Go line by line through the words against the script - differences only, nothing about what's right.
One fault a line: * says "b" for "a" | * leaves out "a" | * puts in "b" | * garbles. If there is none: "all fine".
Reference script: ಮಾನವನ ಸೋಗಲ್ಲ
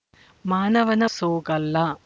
all fine